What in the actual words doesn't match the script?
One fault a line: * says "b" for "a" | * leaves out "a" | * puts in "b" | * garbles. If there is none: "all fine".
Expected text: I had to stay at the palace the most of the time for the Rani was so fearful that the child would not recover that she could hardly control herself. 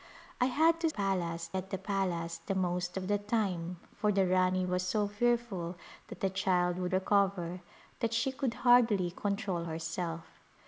* says "palace" for "stay"
* leaves out "not"